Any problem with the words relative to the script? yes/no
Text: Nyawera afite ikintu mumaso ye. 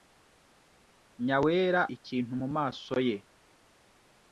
yes